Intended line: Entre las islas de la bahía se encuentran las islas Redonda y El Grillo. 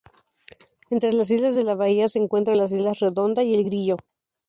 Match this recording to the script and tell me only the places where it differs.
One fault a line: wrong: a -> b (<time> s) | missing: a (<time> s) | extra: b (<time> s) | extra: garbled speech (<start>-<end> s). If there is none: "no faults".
no faults